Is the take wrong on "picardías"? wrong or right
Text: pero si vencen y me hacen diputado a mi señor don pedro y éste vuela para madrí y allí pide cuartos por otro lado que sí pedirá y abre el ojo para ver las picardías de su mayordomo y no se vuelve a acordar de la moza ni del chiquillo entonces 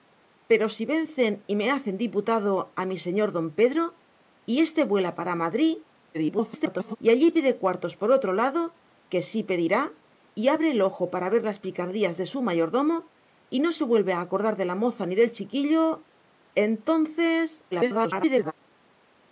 right